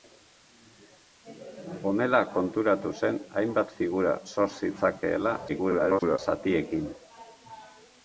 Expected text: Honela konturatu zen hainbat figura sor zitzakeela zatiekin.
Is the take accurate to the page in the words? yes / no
no